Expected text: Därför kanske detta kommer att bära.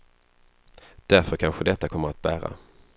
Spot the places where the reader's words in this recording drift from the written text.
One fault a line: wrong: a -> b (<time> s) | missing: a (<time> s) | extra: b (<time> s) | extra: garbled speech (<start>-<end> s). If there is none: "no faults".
no faults